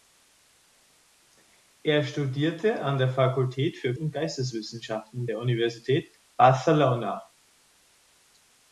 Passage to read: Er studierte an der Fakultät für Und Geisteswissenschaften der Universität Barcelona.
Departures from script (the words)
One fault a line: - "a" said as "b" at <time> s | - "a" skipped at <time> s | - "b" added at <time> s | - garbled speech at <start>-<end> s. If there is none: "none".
none